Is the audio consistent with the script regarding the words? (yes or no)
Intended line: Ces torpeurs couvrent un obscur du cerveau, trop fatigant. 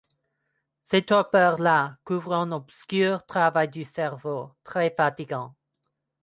no